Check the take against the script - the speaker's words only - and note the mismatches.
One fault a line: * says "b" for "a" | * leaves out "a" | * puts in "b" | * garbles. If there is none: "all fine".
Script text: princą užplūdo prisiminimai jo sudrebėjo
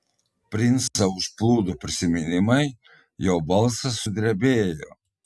* puts in "balsas"